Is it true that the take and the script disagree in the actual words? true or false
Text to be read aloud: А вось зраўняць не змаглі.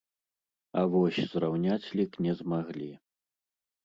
true